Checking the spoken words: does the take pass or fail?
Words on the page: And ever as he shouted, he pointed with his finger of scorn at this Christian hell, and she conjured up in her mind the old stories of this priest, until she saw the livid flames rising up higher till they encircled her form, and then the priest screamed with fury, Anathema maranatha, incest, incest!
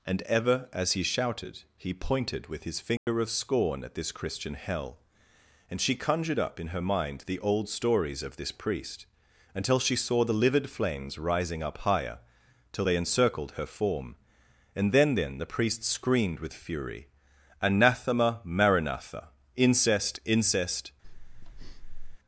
fail